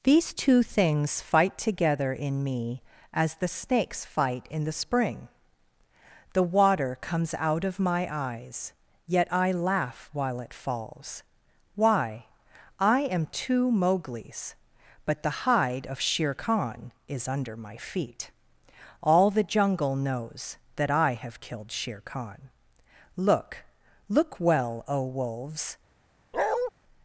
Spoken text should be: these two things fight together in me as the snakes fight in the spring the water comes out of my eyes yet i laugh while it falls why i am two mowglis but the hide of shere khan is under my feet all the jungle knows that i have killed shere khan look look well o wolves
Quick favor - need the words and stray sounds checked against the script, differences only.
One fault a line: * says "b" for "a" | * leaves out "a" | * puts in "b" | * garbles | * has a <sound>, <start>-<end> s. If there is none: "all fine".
* has a bark, 26.3-26.7 s